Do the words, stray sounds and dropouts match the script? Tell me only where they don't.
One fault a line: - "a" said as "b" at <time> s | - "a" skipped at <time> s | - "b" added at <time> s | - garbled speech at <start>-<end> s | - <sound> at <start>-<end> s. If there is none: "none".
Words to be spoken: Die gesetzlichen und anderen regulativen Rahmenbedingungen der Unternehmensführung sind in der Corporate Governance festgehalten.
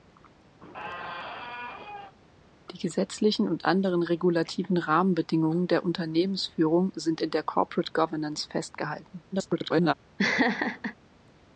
- squeak at 0.6-2.1 s
- garbled speech at 9.3-9.9 s
- laugh at 10.2-11.0 s